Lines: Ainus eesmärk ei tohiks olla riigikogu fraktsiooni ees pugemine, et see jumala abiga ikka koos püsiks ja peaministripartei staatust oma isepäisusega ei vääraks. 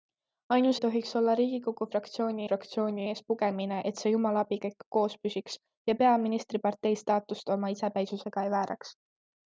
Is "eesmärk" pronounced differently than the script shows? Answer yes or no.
yes